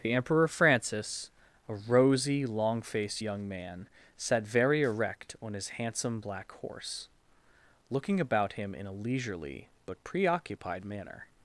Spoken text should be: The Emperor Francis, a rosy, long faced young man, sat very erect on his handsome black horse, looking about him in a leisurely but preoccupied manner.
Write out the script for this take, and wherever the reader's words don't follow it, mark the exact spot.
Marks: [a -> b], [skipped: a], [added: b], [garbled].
The Emperor Francis, a rosy, long faced young man, sat very erect on his handsome black horse, looking about him in a leisurely but preoccupied manner.